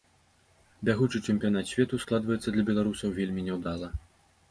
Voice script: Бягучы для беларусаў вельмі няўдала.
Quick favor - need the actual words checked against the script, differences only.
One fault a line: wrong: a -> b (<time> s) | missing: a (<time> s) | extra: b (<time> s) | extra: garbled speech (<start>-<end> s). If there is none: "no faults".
extra: чэмпіянат свету складваецца (1.3 s)